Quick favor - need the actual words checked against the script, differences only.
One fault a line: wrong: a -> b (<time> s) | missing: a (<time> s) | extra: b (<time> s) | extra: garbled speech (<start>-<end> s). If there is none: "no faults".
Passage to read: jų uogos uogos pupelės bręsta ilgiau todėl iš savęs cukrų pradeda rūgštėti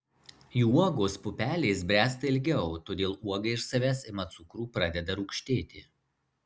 missing: uogos (1.2 s)
extra: uoga (3.3 s)
extra: ima (4.1 s)